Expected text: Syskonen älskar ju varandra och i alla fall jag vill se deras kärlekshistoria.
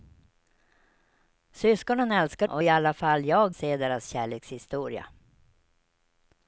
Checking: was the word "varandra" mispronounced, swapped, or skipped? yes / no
yes